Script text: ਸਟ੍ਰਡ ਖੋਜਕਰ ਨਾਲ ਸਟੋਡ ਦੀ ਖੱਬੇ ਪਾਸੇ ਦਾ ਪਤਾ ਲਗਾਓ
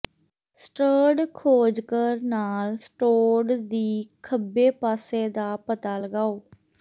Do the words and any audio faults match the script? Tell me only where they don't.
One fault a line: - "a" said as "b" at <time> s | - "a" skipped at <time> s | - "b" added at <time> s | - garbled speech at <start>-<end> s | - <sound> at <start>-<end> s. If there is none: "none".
none